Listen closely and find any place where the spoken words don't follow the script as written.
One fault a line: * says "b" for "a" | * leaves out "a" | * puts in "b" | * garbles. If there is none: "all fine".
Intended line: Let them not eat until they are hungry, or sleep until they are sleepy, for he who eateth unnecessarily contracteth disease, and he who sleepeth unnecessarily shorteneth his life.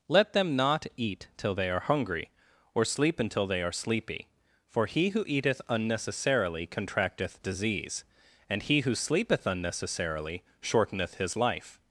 * says "till" for "until"